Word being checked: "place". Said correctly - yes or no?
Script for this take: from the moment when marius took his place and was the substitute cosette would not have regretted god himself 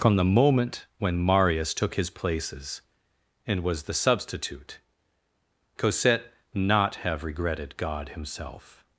no